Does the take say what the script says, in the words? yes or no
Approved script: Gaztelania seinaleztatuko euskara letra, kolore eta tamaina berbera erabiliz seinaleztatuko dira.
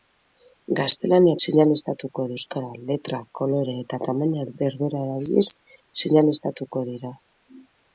yes